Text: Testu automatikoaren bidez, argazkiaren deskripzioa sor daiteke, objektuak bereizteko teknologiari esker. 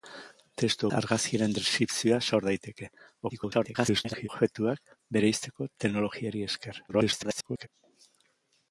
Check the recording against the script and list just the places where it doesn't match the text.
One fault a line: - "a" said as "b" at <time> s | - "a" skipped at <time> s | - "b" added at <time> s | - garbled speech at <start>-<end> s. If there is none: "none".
- "automatikoaren bidez" skipped at 0.9 s
- garbled speech at 3.3-4.3 s
- garbled speech at 6.9-7.7 s